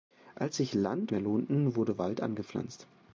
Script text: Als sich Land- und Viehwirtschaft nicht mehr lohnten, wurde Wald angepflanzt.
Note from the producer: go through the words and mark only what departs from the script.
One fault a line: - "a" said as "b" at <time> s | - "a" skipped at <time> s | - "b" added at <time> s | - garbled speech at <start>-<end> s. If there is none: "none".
- "und Viehwirtschaft nicht" skipped at 1.1 s